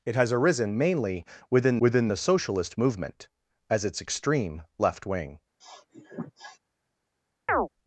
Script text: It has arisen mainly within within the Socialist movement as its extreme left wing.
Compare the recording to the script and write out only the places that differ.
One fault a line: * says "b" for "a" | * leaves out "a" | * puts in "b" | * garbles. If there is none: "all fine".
all fine